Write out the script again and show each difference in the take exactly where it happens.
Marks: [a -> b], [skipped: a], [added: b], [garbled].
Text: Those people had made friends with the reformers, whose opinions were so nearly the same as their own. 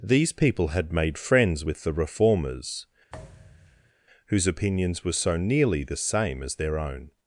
[Those -> These] people had made friends with the reformers, whose opinions were so nearly the same as their own.